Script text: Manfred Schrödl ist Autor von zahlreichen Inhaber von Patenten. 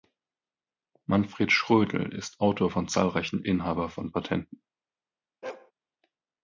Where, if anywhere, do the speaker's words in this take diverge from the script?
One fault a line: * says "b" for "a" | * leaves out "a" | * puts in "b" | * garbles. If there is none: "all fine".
all fine